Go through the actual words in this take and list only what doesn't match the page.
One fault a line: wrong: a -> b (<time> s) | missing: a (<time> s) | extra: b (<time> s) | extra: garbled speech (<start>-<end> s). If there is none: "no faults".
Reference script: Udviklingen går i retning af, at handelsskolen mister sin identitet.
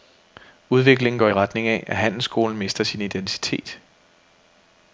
no faults